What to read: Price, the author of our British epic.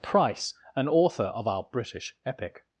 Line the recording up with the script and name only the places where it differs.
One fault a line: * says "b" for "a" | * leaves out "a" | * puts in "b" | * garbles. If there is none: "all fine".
* says "an" for "the"